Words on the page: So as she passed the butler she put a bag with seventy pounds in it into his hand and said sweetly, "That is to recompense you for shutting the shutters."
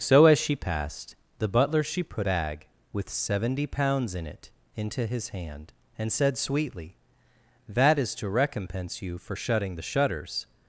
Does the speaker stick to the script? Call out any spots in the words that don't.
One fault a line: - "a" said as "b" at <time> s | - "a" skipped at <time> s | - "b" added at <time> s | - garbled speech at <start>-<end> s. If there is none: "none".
- "a" skipped at 2.3 s